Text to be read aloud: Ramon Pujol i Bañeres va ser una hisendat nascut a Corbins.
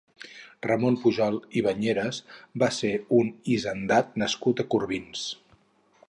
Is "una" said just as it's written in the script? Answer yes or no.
no